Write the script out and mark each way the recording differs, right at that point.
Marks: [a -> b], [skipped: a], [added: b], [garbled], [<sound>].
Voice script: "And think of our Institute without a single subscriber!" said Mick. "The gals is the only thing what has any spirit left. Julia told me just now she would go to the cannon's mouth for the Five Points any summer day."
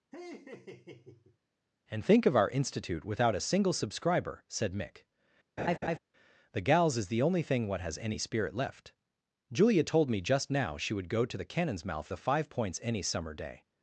[laugh] "And think of our Institute without a single subscriber!" said Mick. [laugh] "The gals is the only thing what has any spirit left. Julia told me just now she would go to the cannon's mouth [skipped: for] the Five Points any summer day."